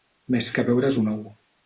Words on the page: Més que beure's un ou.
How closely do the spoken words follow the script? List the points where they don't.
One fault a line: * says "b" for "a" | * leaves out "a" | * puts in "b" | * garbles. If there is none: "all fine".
all fine